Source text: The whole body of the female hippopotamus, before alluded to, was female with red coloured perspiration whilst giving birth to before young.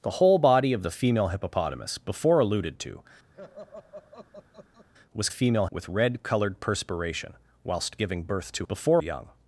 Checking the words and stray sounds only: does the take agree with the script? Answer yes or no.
no